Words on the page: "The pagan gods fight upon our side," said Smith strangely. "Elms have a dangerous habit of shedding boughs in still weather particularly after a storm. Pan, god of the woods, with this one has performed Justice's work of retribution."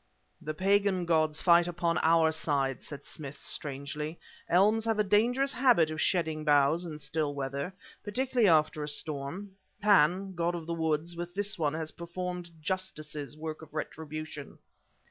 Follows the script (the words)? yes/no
yes